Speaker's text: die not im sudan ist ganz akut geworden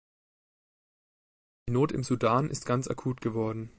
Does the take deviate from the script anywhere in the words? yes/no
no